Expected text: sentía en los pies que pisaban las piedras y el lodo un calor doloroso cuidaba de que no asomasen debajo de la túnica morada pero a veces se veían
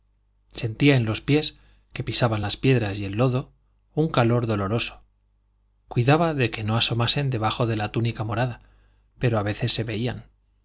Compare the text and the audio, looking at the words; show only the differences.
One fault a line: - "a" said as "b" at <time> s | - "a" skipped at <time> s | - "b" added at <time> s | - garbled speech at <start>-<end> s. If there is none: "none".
none